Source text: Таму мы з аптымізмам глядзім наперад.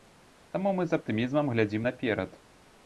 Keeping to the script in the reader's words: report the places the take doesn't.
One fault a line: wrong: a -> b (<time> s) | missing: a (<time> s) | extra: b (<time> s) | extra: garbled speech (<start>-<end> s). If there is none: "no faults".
no faults